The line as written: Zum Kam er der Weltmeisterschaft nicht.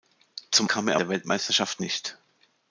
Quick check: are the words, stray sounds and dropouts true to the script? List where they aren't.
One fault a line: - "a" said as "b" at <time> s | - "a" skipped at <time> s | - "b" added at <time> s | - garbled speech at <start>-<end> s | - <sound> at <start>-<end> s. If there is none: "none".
none